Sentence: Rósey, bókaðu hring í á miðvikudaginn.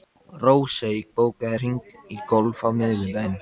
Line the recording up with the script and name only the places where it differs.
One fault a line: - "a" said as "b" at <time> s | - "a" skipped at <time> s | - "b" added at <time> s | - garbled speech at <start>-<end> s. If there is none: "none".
- "golf" added at 2.3 s